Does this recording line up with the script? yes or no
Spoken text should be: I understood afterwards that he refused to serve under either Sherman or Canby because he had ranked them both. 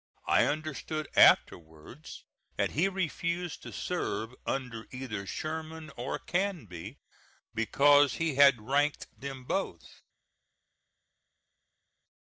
yes